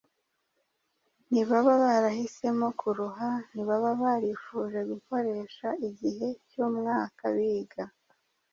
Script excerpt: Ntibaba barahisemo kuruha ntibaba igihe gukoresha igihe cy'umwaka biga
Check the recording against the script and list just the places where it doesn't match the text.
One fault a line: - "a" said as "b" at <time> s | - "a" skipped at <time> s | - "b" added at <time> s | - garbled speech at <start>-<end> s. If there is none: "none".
- "igihe" said as "barifuje" at 4.0 s